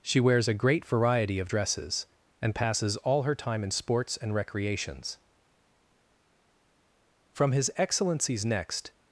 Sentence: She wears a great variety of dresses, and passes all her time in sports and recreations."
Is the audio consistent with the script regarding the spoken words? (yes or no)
no